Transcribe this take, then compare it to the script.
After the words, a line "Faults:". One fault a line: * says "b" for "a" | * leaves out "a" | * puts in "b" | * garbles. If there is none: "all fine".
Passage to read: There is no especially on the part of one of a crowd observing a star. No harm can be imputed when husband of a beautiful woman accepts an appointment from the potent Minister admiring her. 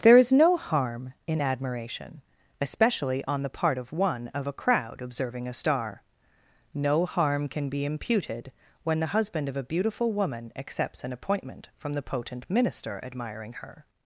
There is no harm in admiration, especially on the part of one of a crowd observing a star. No harm can be imputed when the husband of a beautiful woman accepts an appointment from the potent Minister admiring her.
Faults:
* puts in "harm in admiration"
* puts in "the"